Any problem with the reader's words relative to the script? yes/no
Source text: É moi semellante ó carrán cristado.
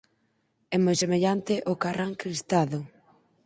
no